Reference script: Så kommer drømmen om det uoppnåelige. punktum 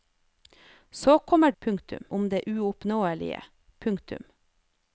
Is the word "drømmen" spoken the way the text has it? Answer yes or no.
no